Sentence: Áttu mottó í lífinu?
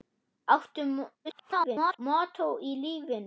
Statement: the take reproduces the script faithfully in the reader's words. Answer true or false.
false